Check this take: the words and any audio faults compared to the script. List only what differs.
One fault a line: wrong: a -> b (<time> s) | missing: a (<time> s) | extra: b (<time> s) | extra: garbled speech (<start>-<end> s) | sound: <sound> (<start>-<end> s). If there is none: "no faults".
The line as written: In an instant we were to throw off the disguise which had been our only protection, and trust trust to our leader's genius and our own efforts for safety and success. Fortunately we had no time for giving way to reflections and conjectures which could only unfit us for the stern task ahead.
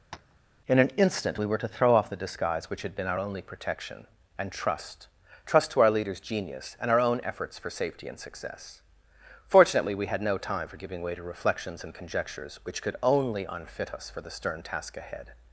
sound: tap (0.1-0.4 s)